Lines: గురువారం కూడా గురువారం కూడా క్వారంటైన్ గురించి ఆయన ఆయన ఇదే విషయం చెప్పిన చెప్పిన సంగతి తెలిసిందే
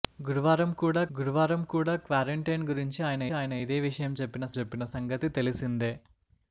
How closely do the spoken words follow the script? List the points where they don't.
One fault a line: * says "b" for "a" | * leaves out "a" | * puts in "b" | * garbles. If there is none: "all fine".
all fine